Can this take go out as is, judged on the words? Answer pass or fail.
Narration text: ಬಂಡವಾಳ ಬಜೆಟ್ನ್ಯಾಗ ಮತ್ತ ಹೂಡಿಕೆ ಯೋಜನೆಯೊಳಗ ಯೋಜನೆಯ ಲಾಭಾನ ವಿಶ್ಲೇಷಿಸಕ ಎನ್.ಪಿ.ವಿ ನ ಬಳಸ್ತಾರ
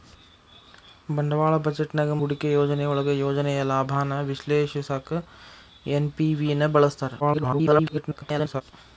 fail